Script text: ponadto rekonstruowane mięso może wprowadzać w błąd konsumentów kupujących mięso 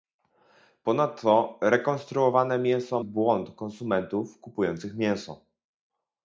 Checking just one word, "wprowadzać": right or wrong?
wrong